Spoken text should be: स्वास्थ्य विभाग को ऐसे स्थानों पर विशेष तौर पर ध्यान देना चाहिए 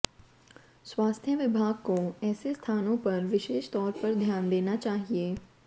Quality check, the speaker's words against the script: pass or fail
pass